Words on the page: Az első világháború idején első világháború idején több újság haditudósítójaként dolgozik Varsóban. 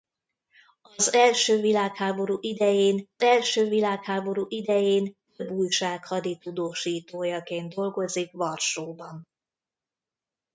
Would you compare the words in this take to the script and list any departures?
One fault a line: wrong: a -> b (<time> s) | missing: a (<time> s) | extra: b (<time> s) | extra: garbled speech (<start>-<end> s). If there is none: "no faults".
no faults